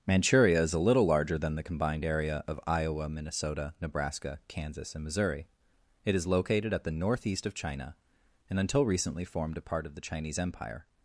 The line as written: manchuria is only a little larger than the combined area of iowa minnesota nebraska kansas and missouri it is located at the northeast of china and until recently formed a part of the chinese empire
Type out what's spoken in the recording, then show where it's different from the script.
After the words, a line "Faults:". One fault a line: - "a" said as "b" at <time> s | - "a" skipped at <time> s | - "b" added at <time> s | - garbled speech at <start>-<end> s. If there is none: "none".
manchuria is a little larger than the combined area of iowa minnesota nebraska kansas and missouri it is located at the northeast of china and until recently formed a part of the chinese empire
Faults:
- "only" skipped at 0.7 s